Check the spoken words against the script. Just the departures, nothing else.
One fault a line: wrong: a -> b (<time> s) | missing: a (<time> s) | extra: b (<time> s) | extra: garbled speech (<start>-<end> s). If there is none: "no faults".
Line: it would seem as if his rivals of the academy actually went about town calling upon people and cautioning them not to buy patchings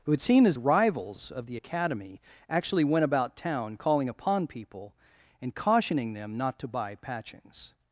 missing: if his (0.6 s)